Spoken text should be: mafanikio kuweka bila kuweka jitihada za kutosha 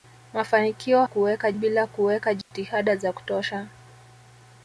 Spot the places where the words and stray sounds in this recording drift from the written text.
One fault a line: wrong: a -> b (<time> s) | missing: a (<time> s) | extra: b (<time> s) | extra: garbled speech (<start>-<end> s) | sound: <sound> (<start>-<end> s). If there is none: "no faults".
sound: dropout (2.4-2.5 s)